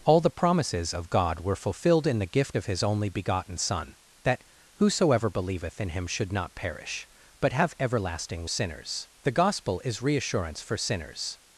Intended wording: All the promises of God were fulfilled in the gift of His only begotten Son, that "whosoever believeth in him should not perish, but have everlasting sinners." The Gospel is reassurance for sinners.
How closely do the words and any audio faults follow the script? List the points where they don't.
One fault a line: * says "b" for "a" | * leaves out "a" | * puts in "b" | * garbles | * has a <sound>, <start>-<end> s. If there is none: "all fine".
all fine